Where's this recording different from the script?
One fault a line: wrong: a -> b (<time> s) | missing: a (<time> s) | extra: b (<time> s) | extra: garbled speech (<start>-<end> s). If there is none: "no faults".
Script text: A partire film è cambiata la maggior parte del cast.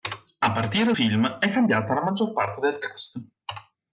no faults